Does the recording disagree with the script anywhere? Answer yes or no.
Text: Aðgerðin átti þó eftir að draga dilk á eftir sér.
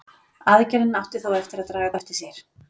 yes